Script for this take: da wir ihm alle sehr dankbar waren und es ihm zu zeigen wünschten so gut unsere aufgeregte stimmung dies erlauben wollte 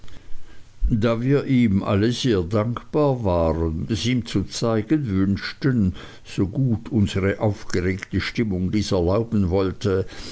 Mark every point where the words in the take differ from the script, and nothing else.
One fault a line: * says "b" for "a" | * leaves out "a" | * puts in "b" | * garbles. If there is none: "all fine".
* leaves out "und"